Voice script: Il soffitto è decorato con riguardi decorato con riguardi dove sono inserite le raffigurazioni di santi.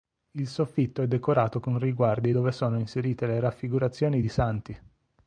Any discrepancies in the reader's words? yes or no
yes